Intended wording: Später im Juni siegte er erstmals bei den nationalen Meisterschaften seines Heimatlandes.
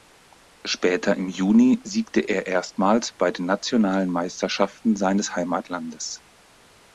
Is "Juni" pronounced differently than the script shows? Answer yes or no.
no